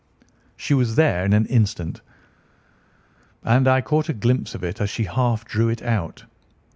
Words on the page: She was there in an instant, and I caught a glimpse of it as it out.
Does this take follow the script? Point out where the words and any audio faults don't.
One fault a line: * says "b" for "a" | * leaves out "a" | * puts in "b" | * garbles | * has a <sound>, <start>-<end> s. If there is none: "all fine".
* puts in "she half drew"